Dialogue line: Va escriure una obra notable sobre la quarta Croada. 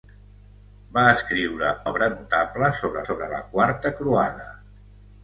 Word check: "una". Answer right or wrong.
wrong